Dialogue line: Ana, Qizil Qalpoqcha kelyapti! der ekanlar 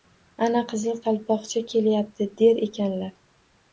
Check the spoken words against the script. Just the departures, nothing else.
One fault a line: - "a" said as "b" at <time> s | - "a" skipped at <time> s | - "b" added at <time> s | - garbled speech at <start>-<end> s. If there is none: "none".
none